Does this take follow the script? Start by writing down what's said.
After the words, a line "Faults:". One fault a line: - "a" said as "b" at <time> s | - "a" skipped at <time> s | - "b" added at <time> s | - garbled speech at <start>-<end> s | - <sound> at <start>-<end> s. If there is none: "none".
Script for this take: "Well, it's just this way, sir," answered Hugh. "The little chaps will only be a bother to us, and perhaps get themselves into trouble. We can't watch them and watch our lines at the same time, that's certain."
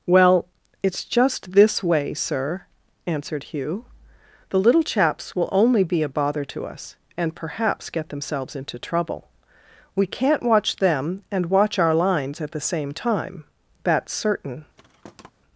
"Well, it's just this way, sir," answered Hugh. "The little chaps will only be a bother to us, and perhaps get themselves into trouble. We can't watch them and watch our lines at the same time, that's certain."
Faults:
- thud at 14.8-15.3 s